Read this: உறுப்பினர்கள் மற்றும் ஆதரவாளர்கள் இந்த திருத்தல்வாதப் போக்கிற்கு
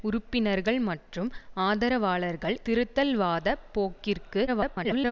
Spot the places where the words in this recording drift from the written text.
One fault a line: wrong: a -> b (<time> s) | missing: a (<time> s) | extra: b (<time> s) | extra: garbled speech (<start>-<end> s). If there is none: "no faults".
missing: இந்த (2.6 s)
extra: garbled speech (4.5-5.1 s)